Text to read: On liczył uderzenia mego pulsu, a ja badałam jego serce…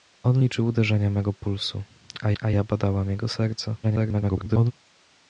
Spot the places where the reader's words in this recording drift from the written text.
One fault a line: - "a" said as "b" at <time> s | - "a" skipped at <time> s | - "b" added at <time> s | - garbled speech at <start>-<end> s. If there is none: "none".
- "a" added at 2.4 s
- garbled speech at 3.8-4.7 s